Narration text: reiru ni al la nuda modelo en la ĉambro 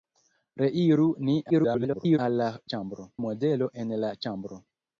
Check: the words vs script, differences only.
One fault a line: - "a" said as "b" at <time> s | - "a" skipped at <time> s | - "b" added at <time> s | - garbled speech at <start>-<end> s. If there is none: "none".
- garbled speech at 1.5-2.2 s
- "nuda" said as "ĉambro" at 2.8 s